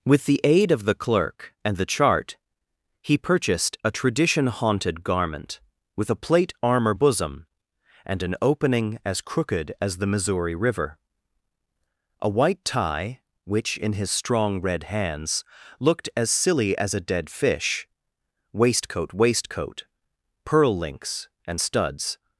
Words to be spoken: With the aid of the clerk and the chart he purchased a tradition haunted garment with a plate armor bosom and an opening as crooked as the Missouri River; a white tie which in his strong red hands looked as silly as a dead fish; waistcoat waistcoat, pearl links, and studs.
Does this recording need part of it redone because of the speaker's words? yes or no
no